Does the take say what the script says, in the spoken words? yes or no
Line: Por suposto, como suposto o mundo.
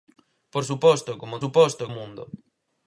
yes